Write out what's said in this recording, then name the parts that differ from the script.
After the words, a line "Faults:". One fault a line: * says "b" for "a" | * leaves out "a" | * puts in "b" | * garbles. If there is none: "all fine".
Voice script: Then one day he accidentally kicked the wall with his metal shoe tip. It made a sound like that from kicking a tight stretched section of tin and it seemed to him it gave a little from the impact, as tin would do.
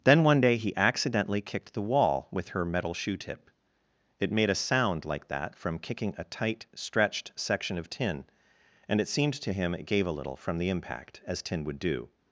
Then one day he accidentally kicked the wall with her metal shoe tip. It made a sound like that from kicking a tight stretched section of tin and it seemed to him it gave a little from the impact, as tin would do.
Faults:
* says "her" for "his"